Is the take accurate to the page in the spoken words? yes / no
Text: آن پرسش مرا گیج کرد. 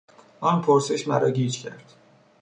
yes